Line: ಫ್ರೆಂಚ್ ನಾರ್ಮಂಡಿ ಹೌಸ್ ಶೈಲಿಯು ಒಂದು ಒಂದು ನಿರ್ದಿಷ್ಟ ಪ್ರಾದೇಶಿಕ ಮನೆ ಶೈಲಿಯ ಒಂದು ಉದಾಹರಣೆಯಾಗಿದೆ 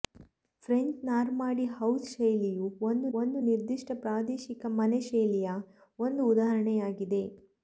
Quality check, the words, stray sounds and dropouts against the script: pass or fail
pass